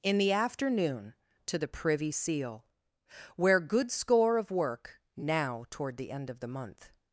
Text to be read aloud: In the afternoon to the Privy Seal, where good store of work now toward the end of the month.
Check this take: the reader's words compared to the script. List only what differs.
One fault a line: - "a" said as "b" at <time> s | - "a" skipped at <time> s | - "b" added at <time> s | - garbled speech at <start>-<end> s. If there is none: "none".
- "store" said as "score" at 3.9 s